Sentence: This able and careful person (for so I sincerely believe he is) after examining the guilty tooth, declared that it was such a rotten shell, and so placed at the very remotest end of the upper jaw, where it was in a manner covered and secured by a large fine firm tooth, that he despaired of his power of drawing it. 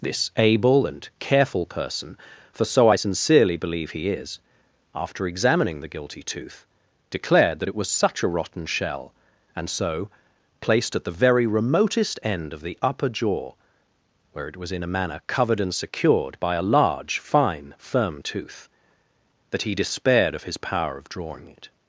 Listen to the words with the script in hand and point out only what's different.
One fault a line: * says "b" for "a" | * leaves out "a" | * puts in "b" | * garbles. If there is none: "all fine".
all fine